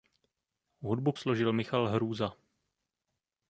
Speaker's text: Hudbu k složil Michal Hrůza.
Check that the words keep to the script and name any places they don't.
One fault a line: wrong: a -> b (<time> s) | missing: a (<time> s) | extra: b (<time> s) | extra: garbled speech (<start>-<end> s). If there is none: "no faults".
no faults